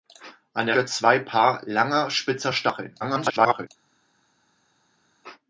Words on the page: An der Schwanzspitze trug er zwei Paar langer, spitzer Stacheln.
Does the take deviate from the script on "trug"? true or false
true